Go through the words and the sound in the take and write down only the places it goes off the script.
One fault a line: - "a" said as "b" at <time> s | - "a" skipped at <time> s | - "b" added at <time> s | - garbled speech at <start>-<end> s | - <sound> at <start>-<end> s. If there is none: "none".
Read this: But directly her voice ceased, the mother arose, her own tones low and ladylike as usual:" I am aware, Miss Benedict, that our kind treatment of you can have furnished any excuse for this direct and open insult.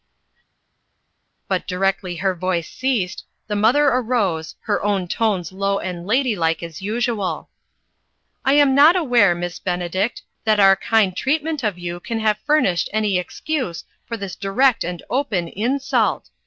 - "not" added at 8.7 s